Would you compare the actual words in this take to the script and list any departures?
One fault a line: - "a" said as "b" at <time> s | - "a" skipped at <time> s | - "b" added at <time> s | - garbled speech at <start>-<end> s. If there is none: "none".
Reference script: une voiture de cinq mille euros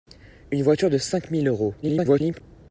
- garbled speech at 1.8-2.4 s